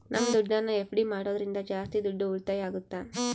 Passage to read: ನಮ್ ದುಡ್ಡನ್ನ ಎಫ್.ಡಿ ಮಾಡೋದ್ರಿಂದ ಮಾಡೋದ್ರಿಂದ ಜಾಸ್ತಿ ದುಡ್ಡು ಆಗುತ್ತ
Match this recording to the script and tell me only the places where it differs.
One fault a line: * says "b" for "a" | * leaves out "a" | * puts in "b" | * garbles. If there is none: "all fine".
* leaves out "ಮಾಡೋದ್ರಿಂದ"
* puts in "ಉಳಿತಾಯ"